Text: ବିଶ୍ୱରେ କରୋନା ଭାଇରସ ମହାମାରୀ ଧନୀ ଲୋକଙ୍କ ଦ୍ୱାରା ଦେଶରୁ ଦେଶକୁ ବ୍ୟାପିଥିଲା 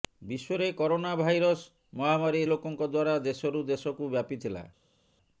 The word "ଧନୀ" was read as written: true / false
false